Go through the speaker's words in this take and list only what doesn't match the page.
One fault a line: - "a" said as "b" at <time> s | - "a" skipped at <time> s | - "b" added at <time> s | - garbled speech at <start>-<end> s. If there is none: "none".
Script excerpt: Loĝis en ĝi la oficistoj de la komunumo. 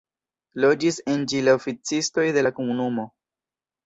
none